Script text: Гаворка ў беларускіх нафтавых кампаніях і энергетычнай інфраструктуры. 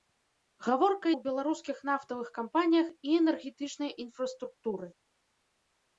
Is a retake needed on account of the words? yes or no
no